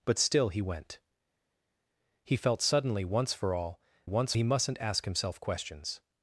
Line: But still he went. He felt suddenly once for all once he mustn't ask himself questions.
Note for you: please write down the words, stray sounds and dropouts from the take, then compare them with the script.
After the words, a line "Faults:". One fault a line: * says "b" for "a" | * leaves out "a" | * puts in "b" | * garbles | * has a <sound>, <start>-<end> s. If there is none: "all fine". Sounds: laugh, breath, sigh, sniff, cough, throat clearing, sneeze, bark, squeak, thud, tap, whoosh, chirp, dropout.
But still he went. He felt suddenly once for all once he mustn't ask himself questions.
Faults:
all fine